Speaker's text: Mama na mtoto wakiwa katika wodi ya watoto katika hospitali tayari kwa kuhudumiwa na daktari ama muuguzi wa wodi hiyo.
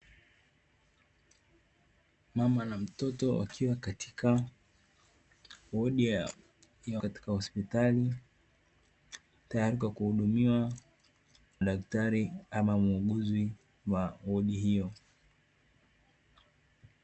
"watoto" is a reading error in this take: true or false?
true